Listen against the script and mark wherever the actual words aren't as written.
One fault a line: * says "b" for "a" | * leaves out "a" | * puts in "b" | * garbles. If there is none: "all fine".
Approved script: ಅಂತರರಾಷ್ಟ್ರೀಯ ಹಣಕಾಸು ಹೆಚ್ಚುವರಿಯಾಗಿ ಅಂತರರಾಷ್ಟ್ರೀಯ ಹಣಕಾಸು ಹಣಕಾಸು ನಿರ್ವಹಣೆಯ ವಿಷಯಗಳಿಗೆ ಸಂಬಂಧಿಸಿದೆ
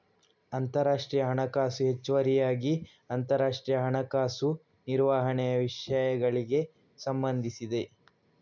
* leaves out "ಹಣಕಾಸು"